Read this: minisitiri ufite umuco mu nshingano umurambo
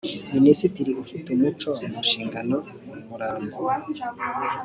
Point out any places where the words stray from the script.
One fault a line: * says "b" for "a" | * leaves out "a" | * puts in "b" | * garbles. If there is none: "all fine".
all fine